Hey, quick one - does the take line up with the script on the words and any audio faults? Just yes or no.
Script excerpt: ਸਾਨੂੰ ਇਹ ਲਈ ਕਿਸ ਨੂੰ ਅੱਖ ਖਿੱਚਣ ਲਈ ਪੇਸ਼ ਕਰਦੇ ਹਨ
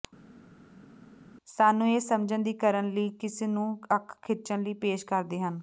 no